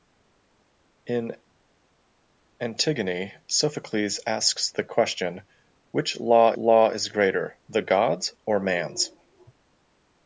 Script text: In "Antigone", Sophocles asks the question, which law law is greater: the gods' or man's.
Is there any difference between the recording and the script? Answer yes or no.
no